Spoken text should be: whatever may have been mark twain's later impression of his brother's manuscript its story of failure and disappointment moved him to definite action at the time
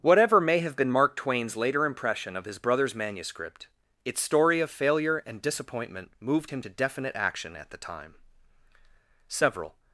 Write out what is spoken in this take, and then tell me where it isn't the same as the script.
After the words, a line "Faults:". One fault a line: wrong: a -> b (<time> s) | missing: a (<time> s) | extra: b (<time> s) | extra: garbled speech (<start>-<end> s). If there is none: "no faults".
whatever may have been mark twain's later impression of his brother's manuscript its story of failure and disappointment moved him to definite action at the time several
Faults:
extra: several (9.3 s)